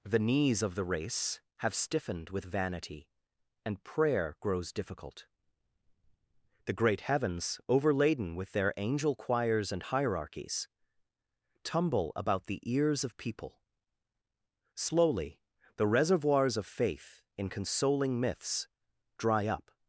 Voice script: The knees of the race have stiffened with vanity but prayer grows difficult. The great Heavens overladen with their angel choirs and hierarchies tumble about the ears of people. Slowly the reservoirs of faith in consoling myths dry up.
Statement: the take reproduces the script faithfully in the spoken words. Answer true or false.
false